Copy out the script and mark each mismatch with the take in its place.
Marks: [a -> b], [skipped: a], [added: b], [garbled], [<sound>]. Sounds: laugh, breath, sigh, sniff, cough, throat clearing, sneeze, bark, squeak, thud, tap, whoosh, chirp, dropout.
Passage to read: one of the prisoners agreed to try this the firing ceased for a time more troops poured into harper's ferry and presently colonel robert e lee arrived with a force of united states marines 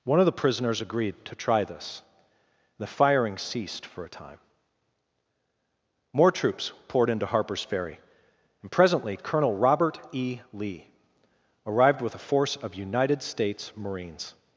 one of the prisoners agreed to try this the firing ceased for a time more troops poured into harper's ferry and presently colonel robert e lee arrived with a force of united states marines